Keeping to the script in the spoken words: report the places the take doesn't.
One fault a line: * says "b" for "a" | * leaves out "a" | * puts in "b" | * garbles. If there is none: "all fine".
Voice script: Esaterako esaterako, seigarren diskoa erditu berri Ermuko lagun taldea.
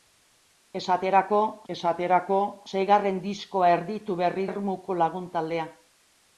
all fine